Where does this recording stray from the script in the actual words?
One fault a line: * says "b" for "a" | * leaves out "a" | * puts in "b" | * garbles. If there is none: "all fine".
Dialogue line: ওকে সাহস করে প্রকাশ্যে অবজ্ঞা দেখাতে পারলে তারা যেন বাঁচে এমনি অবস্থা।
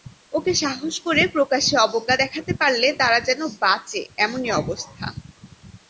all fine